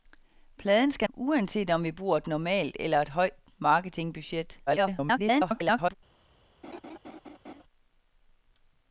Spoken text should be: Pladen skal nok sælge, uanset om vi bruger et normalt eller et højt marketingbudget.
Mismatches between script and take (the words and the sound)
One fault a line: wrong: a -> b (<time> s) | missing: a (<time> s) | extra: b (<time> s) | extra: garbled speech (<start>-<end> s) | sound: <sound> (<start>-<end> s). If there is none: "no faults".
missing: nok sælge (1.1 s)
extra: garbled speech (4.7-5.9 s)
sound: laugh (6.6-7.6 s)